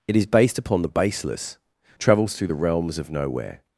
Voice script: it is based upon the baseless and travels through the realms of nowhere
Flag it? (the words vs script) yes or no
yes